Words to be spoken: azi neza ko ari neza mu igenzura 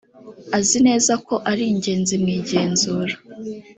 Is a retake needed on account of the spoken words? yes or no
yes